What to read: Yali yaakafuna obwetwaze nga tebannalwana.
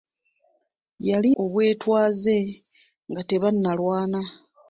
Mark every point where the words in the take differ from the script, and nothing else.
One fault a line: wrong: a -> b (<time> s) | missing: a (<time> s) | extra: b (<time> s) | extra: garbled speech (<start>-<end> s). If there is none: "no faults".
missing: yaakafuna (1.3 s)